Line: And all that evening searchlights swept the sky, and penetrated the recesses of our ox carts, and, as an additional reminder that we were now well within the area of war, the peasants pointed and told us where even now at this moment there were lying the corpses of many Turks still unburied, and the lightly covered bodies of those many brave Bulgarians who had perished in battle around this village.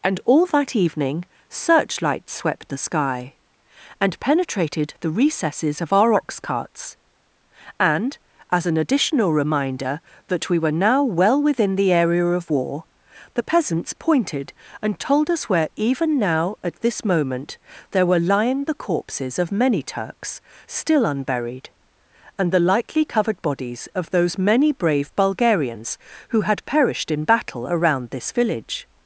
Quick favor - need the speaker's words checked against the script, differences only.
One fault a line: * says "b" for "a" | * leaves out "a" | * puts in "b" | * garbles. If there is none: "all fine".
all fine